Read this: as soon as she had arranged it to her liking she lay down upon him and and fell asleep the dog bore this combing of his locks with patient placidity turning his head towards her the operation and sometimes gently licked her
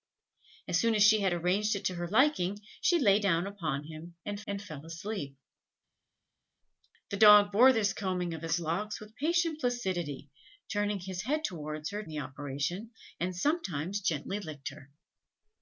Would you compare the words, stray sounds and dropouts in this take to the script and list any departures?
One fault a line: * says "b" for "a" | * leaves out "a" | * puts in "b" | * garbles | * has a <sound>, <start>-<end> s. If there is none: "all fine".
all fine